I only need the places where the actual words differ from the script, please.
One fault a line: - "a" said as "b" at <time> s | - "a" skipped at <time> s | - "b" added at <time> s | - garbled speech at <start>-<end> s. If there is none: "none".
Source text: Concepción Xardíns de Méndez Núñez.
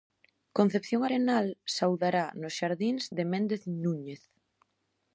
- "Arenal saudará nos" added at 1.1 s